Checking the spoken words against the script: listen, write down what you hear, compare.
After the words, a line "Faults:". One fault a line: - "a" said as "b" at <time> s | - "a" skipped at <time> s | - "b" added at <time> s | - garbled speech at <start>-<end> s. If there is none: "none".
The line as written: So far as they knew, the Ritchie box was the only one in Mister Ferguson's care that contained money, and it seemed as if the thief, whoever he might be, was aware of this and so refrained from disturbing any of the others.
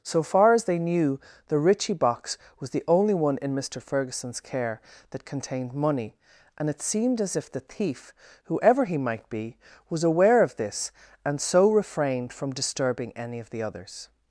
So far as they knew, the Ritchie box was the only one in Mister Ferguson's care that contained money, and it seemed as if the thief, whoever he might be, was aware of this and so refrained from disturbing any of the others.
Faults:
none